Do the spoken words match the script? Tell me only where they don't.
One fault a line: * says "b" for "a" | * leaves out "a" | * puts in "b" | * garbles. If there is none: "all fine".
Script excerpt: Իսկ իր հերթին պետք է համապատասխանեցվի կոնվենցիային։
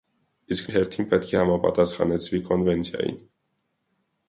all fine